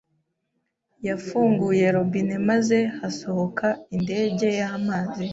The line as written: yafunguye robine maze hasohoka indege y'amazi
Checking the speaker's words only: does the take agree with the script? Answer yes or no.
yes